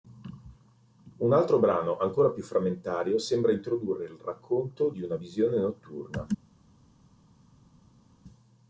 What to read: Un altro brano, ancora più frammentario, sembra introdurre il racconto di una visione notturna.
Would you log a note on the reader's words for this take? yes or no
no